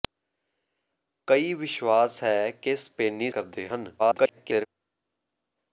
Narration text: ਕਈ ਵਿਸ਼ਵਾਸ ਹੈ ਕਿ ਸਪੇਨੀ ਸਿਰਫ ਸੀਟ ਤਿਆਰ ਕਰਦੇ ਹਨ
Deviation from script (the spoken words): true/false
true